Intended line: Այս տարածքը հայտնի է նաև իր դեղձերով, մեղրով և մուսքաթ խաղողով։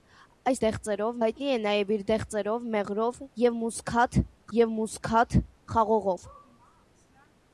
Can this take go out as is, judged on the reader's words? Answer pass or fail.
fail